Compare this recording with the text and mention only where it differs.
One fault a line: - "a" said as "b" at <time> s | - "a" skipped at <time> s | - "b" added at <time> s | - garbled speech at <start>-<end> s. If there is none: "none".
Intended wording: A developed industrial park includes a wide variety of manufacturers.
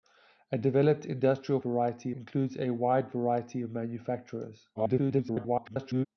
- "park" said as "variety" at 1.6 s
- garbled speech at 4.7-6.1 s